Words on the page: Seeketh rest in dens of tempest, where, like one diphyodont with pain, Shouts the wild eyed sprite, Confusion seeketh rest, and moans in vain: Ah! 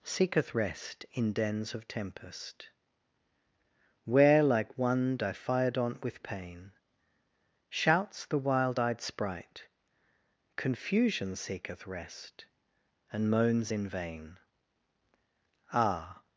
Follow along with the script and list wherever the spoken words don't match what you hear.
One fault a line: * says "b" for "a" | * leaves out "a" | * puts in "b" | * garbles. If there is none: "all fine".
all fine